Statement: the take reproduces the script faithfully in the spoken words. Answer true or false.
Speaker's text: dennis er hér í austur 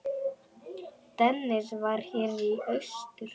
false